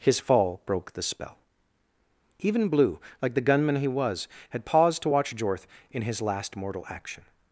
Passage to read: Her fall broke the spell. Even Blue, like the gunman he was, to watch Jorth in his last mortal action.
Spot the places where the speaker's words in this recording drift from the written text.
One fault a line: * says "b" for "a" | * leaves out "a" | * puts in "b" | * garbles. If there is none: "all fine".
* says "His" for "Her"
* puts in "had paused"